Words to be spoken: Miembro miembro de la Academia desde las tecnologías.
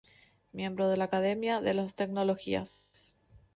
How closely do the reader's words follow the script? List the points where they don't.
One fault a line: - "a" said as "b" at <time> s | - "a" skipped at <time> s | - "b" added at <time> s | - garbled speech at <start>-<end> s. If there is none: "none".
- "miembro" skipped at 0.9 s
- "desde" said as "de" at 1.6 s